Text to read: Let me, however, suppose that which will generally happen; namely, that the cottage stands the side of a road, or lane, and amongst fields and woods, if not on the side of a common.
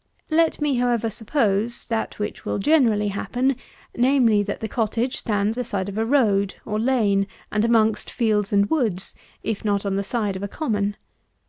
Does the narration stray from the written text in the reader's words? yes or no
no